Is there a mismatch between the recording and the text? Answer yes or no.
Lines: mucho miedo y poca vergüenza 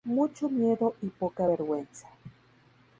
no